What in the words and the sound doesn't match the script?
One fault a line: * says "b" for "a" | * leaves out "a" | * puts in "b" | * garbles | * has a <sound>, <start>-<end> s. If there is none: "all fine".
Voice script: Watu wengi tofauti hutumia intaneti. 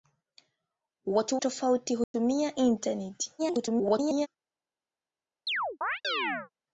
* leaves out "wengi"
* has a dropout, 2.0-2.1 s
* garbles
* has a chirp, 5.5-6.5 s